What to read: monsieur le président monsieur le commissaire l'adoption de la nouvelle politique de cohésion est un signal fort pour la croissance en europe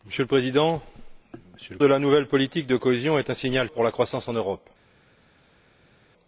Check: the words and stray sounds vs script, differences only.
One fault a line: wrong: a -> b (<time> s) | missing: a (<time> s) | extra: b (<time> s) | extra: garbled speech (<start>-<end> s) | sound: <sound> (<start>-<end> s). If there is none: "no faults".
missing: commissaire l'adoption (1.8 s)
missing: fort (3.7 s)